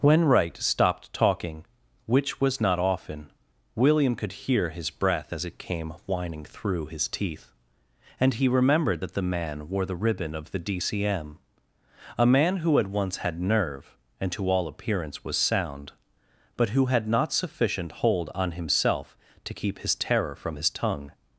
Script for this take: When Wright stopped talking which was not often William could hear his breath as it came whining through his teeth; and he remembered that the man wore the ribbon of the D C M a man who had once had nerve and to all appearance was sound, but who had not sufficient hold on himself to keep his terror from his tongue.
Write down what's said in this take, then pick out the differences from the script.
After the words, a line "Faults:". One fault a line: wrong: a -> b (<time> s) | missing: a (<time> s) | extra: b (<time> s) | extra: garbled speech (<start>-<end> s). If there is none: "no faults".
When Wright stopped talking which was not often William could hear his breath as it came whining through his teeth; and he remembered that the man wore the ribbon of the D C M a man who had once had nerve and to all appearance was sound, but who had not sufficient hold on himself to keep his terror from his tongue.
Faults:
no faults